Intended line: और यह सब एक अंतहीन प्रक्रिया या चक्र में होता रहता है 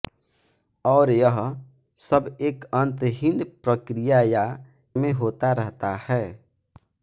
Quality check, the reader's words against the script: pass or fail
fail